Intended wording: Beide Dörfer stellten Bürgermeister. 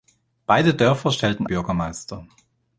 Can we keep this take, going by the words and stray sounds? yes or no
yes